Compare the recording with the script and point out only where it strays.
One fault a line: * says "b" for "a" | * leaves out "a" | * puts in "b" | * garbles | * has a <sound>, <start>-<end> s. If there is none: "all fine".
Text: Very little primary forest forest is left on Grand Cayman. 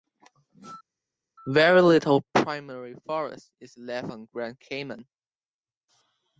* leaves out "forest"